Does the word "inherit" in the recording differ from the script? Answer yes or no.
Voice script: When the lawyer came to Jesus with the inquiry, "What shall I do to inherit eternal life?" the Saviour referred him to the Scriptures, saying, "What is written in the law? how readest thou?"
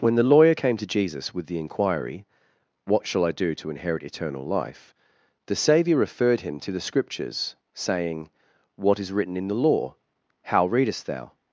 no